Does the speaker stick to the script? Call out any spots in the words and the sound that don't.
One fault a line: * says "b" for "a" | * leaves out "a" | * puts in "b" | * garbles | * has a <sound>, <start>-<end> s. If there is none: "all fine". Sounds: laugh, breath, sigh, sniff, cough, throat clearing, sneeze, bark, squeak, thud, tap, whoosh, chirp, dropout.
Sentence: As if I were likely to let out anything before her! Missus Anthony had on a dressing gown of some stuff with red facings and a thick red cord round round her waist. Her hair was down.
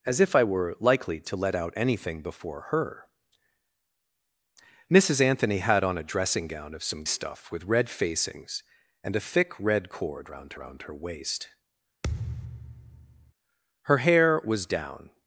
* has a thud, 12.0-13.3 s